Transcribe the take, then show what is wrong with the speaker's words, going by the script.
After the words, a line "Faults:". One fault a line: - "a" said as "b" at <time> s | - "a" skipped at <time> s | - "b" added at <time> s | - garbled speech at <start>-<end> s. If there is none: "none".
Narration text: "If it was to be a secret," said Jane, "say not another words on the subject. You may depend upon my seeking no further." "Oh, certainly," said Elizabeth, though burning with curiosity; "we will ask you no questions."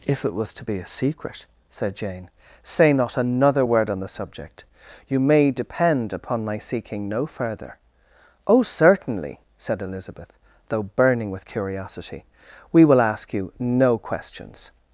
"If it was to be a secret," said Jane, "say not another word on the subject. You may depend upon my seeking no further." "Oh, certainly," said Elizabeth, though burning with curiosity; "we will ask you no questions."
Faults:
- "words" said as "word" at 3.6 s